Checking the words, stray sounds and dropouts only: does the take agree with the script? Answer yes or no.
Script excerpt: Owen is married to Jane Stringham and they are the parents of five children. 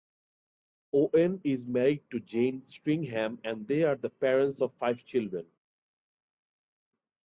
yes